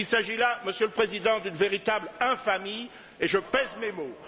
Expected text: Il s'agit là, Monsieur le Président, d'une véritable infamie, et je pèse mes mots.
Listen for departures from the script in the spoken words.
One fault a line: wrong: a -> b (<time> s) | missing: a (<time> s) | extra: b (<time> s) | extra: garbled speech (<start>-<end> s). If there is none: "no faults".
no faults